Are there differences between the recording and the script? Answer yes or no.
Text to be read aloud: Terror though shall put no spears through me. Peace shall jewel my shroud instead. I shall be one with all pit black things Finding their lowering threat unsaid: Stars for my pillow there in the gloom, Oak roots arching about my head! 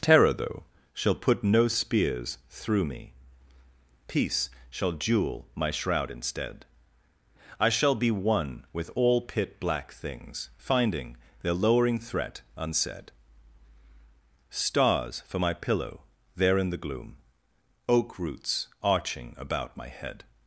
no